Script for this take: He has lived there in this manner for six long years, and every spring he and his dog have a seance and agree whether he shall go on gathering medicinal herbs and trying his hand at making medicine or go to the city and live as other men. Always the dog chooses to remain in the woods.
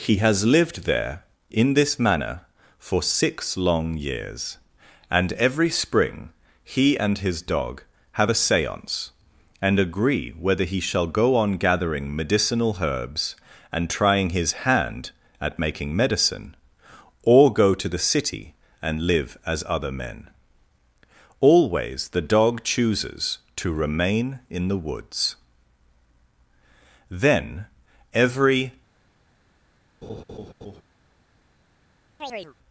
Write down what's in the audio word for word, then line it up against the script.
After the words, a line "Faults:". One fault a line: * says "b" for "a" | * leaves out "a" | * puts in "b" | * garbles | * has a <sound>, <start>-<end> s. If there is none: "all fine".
He has lived there in this manner for six long years, and every spring he and his dog have a seance and agree whether he shall go on gathering medicinal herbs and trying his hand at making medicine or go to the city and live as other men. Always the dog chooses to remain in the woods. "Then every
Faults:
* puts in "Then every"
* has a laugh, 30.0-30.8 s
* has a chirp, 32.2-32.5 s